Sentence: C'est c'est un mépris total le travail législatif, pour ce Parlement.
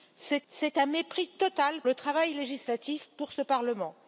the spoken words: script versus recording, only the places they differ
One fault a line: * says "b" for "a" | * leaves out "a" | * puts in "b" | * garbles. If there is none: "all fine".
all fine